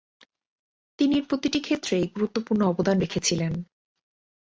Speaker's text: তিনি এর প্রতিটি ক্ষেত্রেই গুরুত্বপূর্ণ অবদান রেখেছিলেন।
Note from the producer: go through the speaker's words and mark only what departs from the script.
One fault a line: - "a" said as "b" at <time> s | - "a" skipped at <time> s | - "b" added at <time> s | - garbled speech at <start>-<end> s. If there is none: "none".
none